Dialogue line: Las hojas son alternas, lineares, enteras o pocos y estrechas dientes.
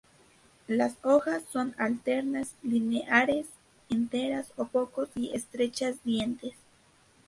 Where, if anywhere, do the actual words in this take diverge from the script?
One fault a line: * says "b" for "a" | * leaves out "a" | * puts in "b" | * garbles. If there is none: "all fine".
all fine